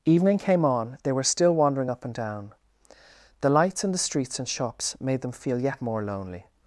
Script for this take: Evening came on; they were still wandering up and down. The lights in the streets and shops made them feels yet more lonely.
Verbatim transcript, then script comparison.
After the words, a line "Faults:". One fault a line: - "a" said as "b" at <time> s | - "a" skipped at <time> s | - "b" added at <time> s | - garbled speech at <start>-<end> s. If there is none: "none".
Evening came on; they were still wandering up and down. The lights in the streets and shops made them feel yet more lonely.
Faults:
- "feels" said as "feel" at 5.3 s